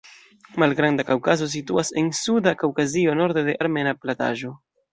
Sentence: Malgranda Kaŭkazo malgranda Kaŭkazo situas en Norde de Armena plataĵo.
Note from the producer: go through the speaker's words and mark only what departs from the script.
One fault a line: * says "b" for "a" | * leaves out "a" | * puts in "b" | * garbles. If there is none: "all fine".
* says "situas en Suda Kaŭkazio" for "malgranda Kaŭkazo situas en"